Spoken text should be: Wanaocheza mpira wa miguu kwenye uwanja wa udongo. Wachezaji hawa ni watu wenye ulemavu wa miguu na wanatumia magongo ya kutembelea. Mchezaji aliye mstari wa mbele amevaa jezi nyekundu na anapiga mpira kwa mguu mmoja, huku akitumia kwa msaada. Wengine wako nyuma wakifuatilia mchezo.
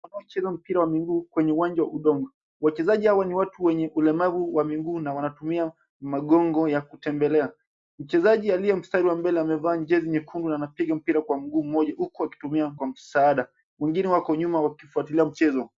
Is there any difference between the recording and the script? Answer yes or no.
no